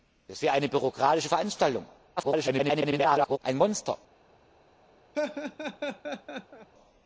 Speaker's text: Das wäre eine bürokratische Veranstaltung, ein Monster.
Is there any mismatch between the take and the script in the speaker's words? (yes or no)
yes